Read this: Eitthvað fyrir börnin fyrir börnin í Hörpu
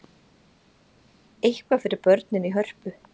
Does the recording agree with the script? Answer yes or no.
no